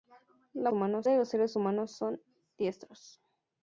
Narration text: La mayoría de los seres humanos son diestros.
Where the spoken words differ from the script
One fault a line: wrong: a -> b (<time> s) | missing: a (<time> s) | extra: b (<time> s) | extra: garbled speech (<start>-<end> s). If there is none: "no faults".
wrong: mayoría -> humanos (0.7 s)